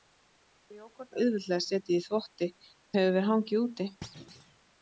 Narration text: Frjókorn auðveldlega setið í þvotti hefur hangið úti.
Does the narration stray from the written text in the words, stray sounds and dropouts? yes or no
yes